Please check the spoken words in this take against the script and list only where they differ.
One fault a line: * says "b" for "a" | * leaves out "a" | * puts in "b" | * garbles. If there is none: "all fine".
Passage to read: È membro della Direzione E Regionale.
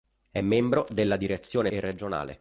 all fine